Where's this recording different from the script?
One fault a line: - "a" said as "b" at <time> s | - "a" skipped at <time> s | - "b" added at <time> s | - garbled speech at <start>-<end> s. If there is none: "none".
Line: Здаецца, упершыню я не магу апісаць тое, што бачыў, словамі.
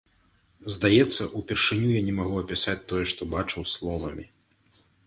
none